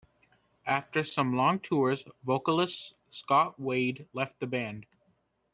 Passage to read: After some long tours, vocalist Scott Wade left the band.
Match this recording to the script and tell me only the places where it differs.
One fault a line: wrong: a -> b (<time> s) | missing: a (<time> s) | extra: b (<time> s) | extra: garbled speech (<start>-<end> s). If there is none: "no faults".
no faults